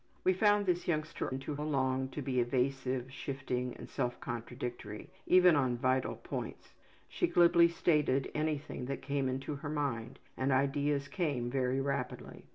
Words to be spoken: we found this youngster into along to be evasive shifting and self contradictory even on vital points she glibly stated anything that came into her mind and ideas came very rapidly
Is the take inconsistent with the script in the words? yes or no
no